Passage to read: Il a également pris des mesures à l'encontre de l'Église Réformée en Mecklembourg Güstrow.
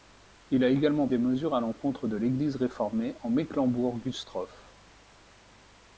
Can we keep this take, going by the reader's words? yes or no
no